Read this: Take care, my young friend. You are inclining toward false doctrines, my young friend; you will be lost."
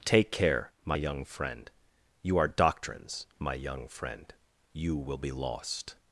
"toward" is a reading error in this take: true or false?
true